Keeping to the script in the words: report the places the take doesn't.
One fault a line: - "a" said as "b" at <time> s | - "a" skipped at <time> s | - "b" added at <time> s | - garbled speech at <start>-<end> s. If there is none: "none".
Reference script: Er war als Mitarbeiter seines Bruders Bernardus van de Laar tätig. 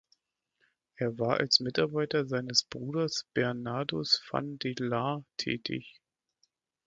none